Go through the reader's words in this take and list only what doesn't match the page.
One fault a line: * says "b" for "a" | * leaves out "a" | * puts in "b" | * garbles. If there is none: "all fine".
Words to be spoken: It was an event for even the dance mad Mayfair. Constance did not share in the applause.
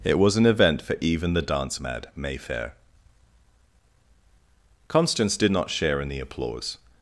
all fine